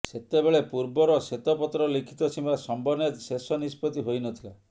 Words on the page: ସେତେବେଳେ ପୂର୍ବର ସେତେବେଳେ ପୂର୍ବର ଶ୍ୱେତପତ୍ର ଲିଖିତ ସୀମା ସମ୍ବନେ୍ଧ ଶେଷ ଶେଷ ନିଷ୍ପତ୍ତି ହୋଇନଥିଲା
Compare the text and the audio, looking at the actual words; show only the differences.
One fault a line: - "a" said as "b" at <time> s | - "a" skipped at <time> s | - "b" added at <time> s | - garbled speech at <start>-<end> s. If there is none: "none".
- "ସେତେବେଳେ ପୂର୍ବର" skipped at 1.2 s
- "ଶେଷ" skipped at 3.6 s